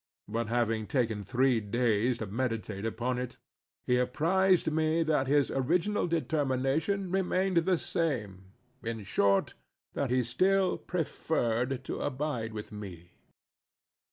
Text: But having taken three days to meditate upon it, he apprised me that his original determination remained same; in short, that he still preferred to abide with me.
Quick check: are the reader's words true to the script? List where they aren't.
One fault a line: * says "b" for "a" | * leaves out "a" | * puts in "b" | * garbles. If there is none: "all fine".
* puts in "the"